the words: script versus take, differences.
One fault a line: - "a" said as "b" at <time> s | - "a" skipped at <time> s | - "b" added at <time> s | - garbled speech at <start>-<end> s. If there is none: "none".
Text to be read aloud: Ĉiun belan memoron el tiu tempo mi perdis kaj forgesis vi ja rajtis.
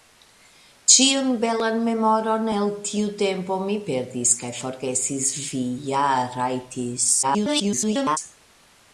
- garbled speech at 7.2-8.2 s